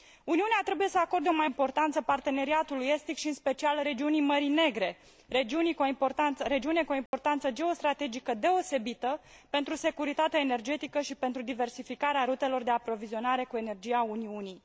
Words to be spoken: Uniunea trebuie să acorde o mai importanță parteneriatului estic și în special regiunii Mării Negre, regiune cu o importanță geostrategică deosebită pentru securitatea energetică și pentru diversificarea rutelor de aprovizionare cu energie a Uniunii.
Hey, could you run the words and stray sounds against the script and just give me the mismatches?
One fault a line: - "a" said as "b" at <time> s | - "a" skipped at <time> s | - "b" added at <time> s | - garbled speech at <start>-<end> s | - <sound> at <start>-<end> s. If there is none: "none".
- dropout at 7.1-7.1 s